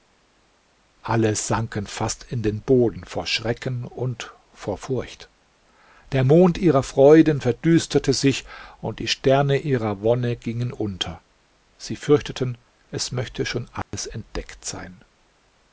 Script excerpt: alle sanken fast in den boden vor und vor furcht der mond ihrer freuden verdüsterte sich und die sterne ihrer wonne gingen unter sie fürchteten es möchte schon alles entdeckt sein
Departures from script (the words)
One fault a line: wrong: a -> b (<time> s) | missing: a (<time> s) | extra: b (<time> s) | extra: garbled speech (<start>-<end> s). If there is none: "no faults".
extra: schrecken (3.3 s)